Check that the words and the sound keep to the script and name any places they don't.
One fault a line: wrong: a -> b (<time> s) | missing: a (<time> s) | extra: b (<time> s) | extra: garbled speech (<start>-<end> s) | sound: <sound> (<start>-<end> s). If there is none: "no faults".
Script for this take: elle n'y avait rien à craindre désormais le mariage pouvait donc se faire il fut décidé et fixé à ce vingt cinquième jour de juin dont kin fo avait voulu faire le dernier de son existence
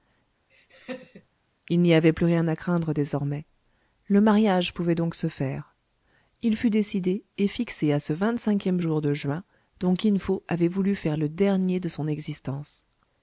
sound: laugh (0.5-1.3 s)
wrong: elle -> il (1.7 s)
extra: plus (2.1 s)